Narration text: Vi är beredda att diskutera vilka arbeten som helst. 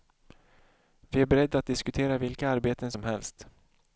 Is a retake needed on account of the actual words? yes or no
no